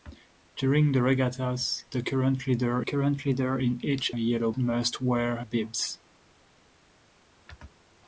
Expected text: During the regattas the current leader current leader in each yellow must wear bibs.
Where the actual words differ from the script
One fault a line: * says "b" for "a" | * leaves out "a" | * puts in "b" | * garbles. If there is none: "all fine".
all fine